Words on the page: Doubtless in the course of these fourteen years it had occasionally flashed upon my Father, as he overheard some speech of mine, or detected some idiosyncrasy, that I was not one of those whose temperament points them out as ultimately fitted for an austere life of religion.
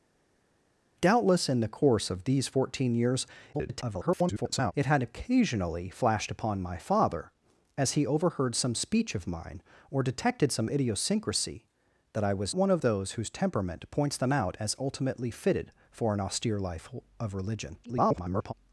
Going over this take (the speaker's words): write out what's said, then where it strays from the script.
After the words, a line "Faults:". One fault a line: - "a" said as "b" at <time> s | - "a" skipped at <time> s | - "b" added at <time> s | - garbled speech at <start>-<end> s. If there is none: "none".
Doubtless in the course of these fourteen years [garbled] it had occasionally flashed upon my Father, as he overheard some speech of mine, or detected some idiosyncrasy, that I was one of those whose temperament points them out as ultimately fitted for an austere life of religion. [garbled]
Faults:
- garbled speech at 3.5-4.7 s
- "not" skipped at 12.6 s
- garbled speech at 17.8-18.5 s